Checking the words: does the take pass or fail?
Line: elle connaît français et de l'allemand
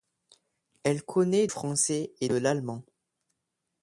pass